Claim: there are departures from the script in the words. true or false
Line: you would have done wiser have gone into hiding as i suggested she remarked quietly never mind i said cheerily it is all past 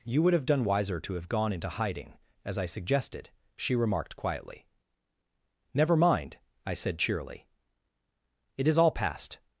true